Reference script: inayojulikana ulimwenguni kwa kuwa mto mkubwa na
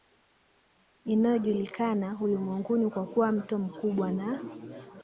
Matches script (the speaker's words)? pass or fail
pass